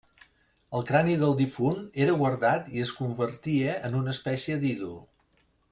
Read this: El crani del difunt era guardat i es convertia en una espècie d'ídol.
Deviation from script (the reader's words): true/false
false